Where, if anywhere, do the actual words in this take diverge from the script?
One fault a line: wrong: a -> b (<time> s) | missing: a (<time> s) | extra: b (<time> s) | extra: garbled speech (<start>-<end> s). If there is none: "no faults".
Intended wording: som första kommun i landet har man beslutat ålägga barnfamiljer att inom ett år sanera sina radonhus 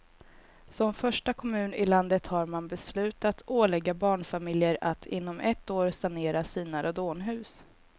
no faults